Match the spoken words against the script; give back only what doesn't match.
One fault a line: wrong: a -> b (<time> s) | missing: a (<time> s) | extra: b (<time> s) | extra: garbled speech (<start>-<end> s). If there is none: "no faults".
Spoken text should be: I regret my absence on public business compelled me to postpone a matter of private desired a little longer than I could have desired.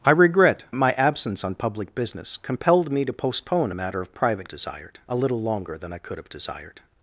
no faults